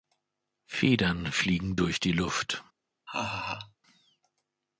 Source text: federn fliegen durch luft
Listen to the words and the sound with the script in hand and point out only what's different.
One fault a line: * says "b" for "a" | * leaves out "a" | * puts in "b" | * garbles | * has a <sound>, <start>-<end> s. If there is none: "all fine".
* puts in "die"
* has a laugh, 3.1-3.8 s